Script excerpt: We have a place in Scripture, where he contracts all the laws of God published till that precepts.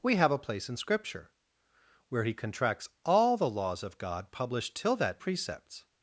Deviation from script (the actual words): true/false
false